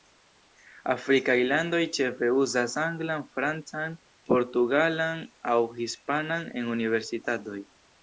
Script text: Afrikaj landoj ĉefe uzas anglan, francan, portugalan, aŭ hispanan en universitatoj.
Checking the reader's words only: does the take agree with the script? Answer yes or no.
yes